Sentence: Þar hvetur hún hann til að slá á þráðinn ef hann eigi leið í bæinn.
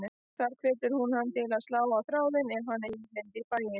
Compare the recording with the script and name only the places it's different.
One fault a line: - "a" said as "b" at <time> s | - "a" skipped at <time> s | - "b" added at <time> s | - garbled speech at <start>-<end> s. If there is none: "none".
none